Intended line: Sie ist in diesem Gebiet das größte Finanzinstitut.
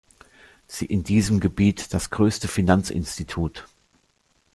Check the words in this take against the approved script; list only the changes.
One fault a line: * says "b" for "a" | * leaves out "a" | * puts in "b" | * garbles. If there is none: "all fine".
* leaves out "ist"